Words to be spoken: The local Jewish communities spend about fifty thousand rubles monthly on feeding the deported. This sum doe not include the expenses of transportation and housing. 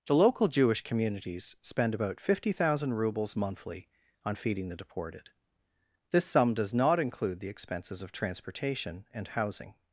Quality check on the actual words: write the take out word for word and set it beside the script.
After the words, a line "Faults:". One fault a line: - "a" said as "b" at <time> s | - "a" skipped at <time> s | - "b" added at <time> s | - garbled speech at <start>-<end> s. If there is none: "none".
The local Jewish communities spend about fifty thousand rubles monthly on feeding the deported. This sum does not include the expenses of transportation and housing.
Faults:
- "doe" said as "does" at 6.5 s